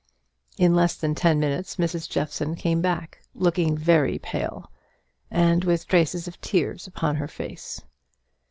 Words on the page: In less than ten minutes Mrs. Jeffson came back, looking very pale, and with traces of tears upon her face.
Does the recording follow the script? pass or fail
pass